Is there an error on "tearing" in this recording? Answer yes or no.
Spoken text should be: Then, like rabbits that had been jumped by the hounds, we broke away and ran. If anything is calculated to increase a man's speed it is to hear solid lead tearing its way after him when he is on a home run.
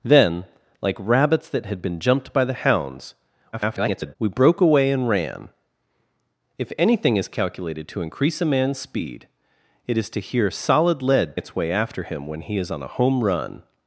yes